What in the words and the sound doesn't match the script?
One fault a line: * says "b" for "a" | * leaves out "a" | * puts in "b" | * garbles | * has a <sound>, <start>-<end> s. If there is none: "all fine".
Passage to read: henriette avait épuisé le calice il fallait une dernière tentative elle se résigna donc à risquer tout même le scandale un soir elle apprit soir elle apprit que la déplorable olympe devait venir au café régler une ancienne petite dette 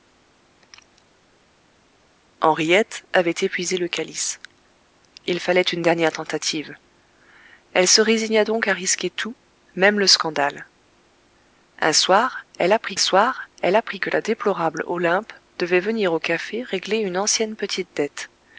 all fine